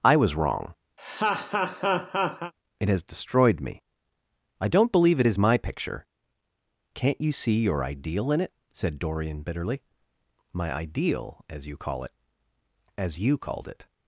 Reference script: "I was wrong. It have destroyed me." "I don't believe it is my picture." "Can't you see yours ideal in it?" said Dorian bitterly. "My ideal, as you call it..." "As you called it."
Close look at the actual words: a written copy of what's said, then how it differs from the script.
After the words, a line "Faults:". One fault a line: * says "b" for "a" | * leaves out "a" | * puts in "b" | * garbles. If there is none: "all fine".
"I was wrong. It has destroyed me." "I don't believe it is my picture." "Can't you see your ideal in it?" said Dorian bitterly. "My ideal, as you call it..." "As you called it."
Faults:
* says "has" for "have"
* says "your" for "yours"